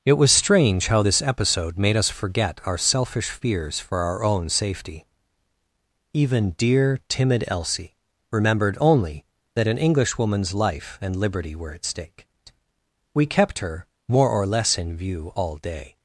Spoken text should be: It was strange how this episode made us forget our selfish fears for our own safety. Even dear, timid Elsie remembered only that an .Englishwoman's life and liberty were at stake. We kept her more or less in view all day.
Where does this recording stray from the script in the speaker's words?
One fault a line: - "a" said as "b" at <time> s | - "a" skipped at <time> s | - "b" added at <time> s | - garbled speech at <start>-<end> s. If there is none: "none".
none